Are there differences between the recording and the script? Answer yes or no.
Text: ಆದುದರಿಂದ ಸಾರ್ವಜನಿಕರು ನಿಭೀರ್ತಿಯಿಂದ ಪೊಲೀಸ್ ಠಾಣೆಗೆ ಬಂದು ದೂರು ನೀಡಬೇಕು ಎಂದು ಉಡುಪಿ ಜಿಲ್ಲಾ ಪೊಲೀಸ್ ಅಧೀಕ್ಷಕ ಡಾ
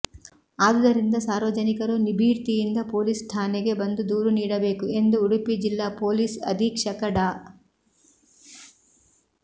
no